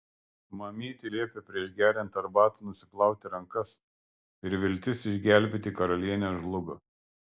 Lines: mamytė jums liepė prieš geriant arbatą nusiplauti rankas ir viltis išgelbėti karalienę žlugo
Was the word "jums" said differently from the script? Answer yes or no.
yes